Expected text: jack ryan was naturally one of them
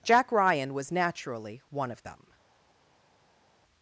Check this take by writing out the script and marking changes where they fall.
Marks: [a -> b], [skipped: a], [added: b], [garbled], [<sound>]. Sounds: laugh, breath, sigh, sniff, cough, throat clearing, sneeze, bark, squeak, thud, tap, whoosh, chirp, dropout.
jack ryan was naturally one of them